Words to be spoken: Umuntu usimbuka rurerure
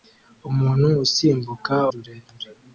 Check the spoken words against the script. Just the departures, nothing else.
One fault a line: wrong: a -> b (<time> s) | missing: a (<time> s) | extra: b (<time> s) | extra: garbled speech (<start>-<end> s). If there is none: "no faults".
no faults